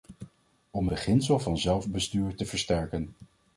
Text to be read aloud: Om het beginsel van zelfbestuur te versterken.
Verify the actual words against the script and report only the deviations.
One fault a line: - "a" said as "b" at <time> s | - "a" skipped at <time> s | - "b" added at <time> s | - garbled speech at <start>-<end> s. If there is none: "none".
- "het" skipped at 0.9 s